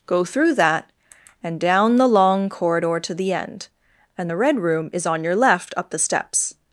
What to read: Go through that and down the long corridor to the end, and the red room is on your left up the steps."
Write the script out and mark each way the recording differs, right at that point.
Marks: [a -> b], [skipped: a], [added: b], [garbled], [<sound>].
Go through that and down the long corridor to the end, and the red room is on your left up the steps."